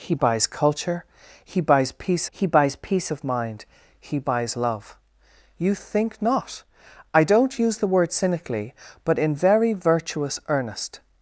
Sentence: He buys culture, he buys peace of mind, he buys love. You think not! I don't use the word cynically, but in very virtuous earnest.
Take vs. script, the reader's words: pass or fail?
fail